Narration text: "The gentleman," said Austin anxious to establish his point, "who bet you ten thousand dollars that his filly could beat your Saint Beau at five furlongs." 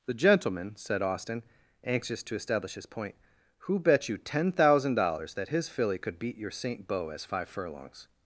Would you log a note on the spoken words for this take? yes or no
yes